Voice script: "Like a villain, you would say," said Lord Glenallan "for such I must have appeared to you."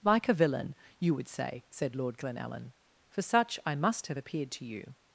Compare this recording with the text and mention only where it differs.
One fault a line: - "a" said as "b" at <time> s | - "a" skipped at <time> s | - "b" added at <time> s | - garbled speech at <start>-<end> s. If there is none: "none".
none